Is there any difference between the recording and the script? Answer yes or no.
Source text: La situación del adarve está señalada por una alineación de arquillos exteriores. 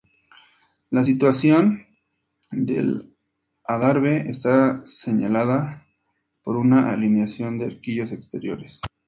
no